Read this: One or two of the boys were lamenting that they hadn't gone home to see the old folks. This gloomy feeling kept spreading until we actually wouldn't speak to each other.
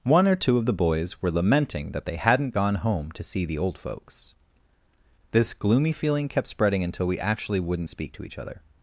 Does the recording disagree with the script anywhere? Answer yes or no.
no